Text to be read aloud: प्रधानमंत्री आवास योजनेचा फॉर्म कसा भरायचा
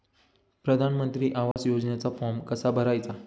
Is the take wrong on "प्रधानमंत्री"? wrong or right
right